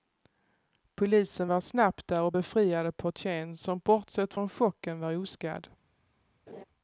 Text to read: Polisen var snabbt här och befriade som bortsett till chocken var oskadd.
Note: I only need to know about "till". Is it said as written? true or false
false